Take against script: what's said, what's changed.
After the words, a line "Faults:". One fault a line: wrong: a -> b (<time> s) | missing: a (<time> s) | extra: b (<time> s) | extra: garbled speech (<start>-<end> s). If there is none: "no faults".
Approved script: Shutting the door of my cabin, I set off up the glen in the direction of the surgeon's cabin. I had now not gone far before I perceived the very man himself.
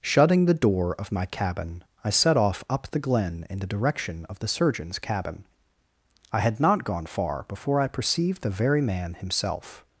Shutting the door of my cabin, I set off up the glen in the direction of the surgeon's cabin. I had not gone far before I perceived the very man himself.
Faults:
missing: now (6.6 s)